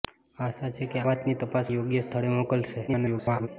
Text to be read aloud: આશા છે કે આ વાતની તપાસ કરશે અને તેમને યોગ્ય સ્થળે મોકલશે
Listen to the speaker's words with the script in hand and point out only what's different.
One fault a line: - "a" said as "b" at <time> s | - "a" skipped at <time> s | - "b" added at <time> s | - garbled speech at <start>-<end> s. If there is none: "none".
- "આ" skipped at 1.0 s
- "કરશે અને તેમને" skipped at 1.7 s
- garbled speech at 2.9-3.5 s